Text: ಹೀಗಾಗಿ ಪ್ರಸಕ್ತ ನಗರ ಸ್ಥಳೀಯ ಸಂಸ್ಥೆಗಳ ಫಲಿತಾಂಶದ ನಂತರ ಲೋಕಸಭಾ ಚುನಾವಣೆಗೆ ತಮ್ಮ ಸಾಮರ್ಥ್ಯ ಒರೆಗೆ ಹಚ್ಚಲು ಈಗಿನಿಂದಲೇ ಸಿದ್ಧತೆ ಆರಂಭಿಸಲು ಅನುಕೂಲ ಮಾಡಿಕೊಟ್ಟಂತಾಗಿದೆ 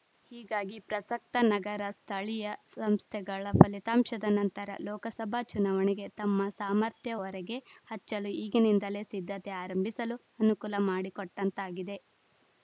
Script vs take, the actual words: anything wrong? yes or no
no